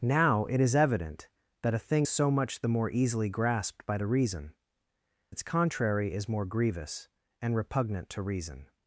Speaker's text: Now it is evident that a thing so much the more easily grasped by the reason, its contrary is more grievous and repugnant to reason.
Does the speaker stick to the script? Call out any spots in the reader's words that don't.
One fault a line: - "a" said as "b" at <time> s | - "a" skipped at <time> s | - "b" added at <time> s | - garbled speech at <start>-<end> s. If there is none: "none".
none